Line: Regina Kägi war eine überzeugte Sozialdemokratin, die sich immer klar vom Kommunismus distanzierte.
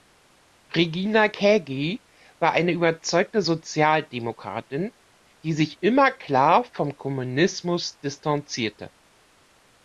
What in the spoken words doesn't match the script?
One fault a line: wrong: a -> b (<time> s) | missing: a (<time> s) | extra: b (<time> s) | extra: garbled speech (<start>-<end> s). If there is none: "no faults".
no faults